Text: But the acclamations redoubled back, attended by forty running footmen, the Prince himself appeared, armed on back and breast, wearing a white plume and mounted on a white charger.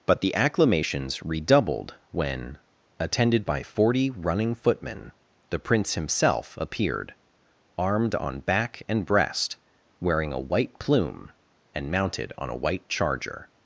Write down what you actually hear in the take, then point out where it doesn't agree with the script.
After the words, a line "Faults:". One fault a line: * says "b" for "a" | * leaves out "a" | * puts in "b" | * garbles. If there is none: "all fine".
But the acclamations redoubled when, attended by forty running footmen, the Prince himself appeared, armed on back and breast, wearing a white plume and mounted on a white charger.
Faults:
* says "when" for "back"